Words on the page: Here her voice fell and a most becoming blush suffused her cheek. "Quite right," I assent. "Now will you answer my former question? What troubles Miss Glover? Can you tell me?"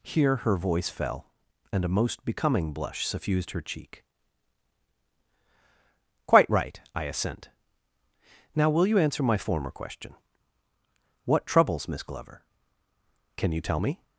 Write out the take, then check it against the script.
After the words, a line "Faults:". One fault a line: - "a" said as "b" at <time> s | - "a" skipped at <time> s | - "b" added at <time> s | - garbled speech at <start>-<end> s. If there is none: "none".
Here her voice fell and a most becoming blush suffused her cheek. "Quite right," I assent. "Now will you answer my former question? What troubles Miss Glover? Can you tell me?"
Faults:
none